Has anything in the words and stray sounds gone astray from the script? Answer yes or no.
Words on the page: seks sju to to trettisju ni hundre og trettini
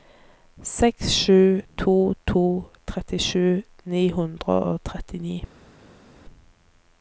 no